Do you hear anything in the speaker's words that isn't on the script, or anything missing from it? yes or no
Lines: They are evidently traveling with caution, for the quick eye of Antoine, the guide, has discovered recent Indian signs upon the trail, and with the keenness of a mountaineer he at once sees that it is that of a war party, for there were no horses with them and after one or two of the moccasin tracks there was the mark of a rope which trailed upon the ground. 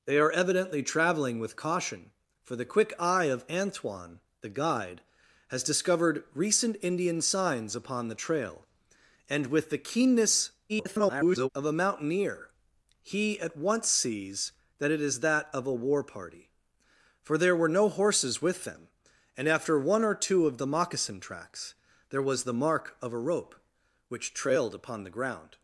yes